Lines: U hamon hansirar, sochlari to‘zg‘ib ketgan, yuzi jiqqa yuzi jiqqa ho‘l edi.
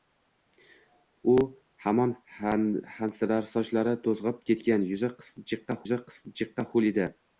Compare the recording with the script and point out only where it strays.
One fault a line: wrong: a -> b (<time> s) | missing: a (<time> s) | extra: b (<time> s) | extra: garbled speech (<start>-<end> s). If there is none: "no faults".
no faults